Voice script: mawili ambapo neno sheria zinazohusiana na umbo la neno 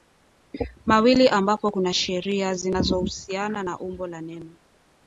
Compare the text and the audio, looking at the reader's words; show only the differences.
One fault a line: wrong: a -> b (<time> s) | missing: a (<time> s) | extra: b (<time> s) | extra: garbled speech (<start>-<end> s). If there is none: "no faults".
wrong: neno -> kuna (1.7 s)